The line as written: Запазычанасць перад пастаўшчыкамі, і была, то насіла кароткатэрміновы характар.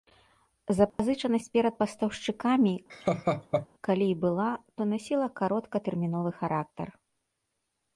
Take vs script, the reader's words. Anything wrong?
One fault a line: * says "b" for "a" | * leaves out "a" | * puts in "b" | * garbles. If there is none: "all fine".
* puts in "калі"